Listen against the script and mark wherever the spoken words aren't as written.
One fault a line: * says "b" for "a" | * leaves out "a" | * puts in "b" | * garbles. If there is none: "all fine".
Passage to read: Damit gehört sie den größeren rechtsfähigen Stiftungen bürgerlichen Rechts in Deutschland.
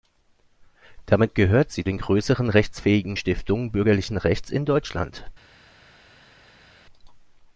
all fine